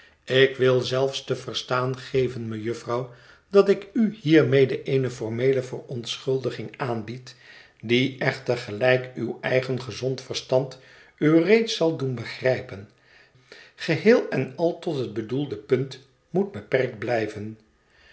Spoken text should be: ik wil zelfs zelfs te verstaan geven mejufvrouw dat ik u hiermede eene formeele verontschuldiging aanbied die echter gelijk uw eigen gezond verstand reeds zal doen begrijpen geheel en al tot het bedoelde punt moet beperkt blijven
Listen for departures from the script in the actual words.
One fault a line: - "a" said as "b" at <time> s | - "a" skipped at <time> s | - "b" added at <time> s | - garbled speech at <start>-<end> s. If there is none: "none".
- "zelfs" skipped at 1.2 s
- "u" added at 11.2 s